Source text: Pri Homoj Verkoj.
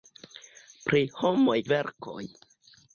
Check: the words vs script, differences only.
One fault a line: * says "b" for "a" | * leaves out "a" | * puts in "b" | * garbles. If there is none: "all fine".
all fine